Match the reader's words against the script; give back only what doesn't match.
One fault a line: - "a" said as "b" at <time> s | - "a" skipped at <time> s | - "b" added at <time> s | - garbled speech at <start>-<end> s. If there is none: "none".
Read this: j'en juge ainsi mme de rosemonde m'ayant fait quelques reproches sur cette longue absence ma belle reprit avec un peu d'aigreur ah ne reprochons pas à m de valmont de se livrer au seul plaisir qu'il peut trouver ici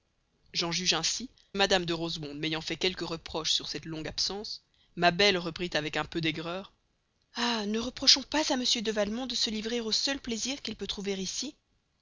none